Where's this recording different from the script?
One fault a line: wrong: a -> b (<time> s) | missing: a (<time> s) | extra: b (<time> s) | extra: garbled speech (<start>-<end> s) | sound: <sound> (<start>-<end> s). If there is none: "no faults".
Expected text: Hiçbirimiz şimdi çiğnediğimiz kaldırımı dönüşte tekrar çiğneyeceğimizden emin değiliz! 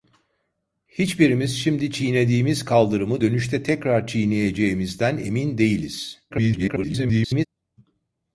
extra: garbled speech (6.3-7.5 s)